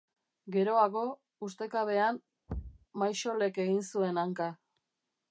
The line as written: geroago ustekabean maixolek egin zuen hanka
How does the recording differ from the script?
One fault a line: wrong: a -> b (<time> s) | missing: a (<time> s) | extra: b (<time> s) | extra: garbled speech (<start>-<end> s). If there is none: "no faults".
no faults